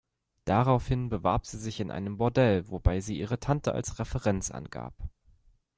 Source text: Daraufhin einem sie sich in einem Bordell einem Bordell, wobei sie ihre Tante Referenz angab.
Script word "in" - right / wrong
right